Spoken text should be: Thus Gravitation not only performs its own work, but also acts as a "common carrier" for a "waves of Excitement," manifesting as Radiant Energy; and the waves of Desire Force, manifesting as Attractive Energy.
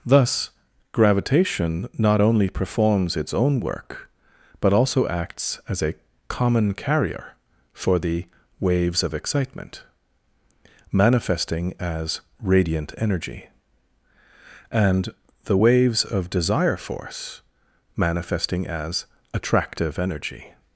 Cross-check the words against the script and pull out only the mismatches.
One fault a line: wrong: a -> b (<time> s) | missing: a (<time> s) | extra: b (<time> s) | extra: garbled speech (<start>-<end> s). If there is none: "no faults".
wrong: a -> the (8.0 s)